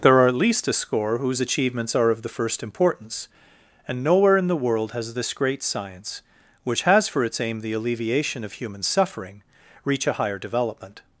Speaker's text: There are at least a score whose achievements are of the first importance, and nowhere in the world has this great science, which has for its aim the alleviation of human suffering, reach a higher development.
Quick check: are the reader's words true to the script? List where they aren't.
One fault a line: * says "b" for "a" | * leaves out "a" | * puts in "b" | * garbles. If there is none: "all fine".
all fine